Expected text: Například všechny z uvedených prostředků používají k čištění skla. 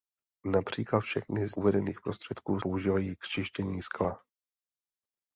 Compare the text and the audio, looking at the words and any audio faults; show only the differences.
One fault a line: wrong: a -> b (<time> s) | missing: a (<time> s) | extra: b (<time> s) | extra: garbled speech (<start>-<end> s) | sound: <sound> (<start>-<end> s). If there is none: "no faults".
no faults